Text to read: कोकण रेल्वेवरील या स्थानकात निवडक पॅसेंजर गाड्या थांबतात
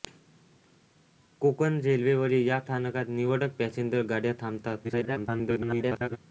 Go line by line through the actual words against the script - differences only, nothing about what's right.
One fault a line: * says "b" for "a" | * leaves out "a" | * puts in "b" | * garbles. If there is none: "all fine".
* garbles